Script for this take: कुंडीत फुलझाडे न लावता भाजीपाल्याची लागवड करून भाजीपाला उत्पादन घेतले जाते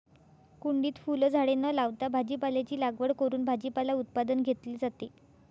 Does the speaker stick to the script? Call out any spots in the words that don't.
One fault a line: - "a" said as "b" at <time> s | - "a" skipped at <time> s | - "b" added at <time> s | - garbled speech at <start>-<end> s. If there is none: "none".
none